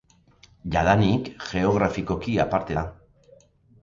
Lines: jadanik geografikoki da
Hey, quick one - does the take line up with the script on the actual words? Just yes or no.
no